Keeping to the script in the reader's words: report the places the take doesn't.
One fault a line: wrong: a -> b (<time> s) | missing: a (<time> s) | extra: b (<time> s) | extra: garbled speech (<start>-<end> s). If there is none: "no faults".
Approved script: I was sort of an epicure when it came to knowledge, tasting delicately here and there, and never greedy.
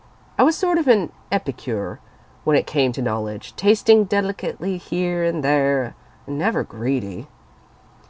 no faults